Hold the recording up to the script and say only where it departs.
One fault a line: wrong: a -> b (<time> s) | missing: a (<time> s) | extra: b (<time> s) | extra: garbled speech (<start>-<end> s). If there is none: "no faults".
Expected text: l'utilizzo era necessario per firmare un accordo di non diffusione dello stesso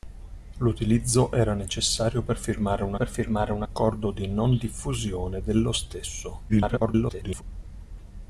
extra: per firmare un (2.9 s)
extra: garbled speech (6.5-7.4 s)